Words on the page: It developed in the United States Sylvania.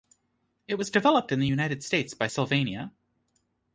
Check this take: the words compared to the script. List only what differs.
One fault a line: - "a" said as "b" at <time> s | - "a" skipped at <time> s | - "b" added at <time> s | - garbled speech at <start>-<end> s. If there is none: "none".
- "was" added at 0.8 s
- "by" added at 2.1 s